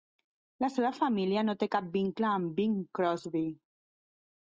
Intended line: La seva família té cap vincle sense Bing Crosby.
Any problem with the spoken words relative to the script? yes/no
yes